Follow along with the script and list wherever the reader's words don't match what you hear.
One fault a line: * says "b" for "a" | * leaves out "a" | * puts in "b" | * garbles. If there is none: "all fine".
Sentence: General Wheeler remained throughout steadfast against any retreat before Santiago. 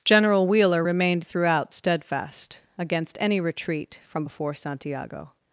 * puts in "from"